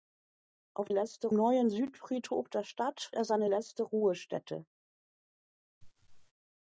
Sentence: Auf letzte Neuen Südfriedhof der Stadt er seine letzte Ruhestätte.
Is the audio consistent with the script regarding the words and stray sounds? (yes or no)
no